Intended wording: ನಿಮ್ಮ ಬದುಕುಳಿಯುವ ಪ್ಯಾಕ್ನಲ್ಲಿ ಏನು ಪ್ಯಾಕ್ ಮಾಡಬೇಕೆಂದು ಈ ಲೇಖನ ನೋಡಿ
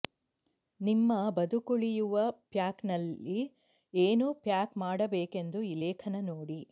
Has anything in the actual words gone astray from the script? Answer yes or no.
no